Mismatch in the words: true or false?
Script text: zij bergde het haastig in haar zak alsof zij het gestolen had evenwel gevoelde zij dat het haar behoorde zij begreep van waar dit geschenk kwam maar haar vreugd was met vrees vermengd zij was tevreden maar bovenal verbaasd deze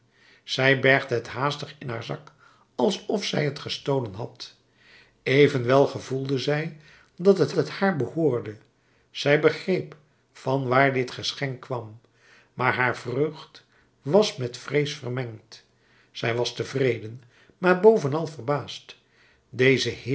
true